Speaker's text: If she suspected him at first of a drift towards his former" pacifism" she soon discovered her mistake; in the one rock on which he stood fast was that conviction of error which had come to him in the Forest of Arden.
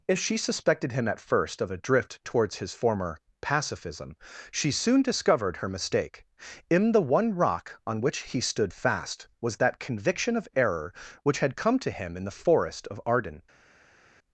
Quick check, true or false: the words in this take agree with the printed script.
true